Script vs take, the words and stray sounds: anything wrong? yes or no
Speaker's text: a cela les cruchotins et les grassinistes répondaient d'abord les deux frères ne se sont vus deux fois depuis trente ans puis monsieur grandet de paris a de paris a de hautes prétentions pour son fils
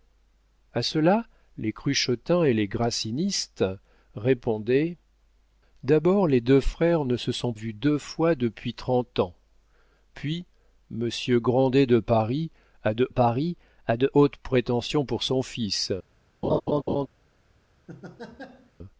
yes